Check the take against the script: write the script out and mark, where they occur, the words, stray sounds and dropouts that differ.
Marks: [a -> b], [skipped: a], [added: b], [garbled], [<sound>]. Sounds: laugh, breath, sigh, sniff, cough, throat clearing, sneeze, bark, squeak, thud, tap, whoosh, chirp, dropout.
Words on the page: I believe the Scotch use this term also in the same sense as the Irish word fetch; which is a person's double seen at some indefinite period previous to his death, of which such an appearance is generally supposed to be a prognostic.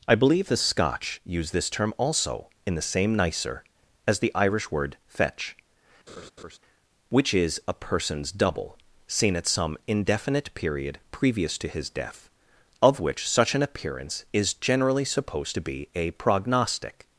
I believe the Scotch use this term also in the same [sense -> nicer] as the Irish word fetch; [laugh] which is a person's double seen at some indefinite period previous to his death, of which such an appearance is generally supposed to be a prognostic.